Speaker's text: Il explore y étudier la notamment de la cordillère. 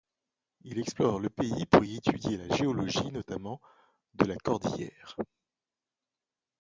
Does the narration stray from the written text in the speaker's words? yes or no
yes